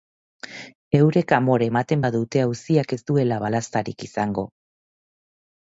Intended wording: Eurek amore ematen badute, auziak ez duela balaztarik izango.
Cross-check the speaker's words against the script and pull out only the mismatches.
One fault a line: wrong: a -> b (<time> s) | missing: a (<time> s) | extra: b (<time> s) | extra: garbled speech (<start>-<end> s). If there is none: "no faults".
no faults